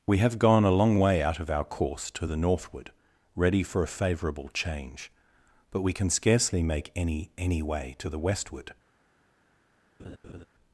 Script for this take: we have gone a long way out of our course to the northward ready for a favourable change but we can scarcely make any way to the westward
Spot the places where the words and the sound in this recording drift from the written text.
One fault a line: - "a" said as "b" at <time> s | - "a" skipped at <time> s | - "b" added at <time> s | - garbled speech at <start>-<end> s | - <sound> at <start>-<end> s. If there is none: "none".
- "any" added at 7.4 s
- laugh at 10.0-10.5 s